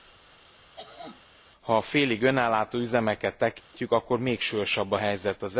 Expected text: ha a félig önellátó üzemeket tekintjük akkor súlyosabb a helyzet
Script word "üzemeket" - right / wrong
right